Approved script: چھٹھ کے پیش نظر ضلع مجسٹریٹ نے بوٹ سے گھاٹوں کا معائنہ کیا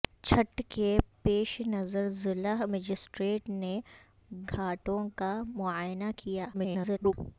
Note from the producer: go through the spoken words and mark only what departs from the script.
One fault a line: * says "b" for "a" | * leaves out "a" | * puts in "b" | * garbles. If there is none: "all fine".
* leaves out "بوٹ سے"
* garbles